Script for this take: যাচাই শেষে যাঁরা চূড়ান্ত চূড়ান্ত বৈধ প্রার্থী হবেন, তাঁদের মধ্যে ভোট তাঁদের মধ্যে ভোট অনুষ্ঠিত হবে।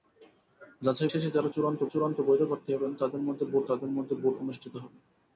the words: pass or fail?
pass